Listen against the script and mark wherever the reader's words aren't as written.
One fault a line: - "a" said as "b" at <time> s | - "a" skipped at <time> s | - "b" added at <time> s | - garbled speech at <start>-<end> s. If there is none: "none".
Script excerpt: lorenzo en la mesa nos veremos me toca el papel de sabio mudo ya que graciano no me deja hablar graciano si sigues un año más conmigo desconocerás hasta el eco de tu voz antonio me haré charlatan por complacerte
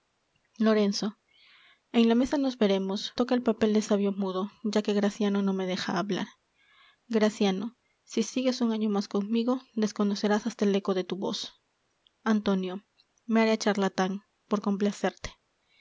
- "me" skipped at 3.1 s